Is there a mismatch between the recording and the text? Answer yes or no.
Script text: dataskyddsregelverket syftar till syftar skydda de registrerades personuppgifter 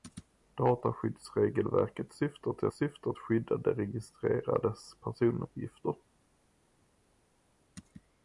no